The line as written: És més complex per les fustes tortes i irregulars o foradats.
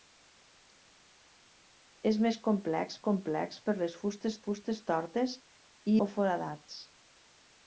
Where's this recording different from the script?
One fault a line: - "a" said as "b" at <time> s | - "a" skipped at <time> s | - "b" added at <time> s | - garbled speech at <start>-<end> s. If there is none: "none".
- "complex" added at 3.1 s
- "fustes" added at 4.4 s
- "irregulars" skipped at 6.0 s